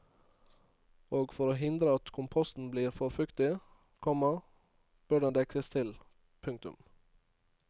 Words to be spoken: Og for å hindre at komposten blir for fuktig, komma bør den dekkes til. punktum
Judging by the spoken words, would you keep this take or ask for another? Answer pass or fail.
pass